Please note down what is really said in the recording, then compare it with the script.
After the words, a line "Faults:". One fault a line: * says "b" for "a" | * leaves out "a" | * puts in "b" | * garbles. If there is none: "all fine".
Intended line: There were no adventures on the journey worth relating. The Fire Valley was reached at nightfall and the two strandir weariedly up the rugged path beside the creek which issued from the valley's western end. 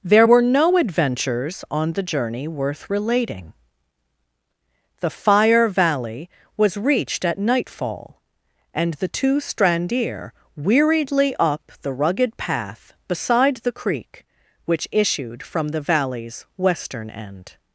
There were no adventures on the journey worth relating. The Fire Valley was reached at nightfall and the two strandir weariedly up the rugged path beside the creek which issued from the valley's western end.
Faults:
all fine